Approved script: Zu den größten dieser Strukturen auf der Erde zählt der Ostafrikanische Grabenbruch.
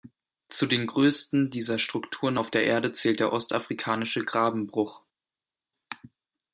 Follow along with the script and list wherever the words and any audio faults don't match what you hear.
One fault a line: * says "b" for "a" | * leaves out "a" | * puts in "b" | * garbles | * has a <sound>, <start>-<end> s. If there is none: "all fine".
all fine